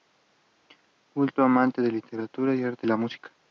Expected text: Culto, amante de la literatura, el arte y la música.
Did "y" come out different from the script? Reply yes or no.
yes